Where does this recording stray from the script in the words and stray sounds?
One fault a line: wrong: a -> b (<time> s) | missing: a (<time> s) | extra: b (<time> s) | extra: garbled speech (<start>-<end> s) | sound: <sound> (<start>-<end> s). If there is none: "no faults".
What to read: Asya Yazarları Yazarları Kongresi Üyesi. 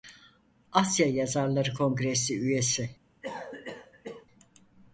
missing: Yazarları (1.7 s)
sound: cough (3.2-4.3 s)